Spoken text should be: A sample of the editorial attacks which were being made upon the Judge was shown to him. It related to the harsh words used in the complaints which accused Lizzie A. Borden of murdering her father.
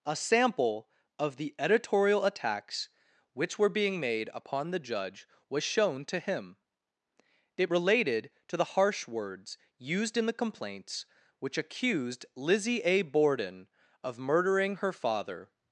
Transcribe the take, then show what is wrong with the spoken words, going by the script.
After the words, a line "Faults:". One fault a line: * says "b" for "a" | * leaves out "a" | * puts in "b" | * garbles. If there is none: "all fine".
A sample of the editorial attacks which were being made upon the Judge was shown to him. It related to the harsh words used in the complaints which accused Lizzie A. Borden of murdering her father.
Faults:
all fine